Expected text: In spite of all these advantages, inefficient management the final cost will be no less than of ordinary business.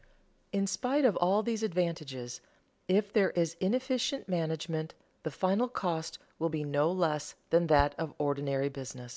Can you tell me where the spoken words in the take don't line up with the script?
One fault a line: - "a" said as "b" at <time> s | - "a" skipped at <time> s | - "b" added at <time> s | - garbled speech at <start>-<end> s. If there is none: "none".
- "if there is" added at 2.9 s
- "that" added at 7.7 s